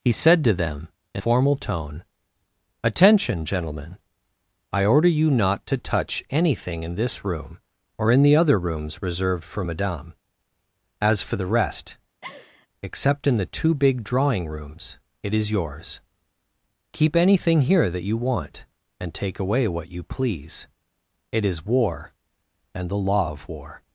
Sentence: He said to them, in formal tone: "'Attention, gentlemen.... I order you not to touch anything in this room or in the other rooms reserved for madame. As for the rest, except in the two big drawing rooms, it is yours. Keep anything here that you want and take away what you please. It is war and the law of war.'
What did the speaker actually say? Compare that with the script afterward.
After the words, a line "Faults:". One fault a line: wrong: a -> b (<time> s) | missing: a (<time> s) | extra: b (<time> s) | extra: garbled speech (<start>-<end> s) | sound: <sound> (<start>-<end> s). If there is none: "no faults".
He said to them, in formal tone: "'Attention, gentlemen.... I order you not to touch anything in this room or in the other rooms reserved for madame. As for the rest, except in the two big drawing rooms, it is yours. Keep anything here that you want and take away what you please. It is war and the law of war.'
Faults:
sound: laugh (12.2-12.7 s)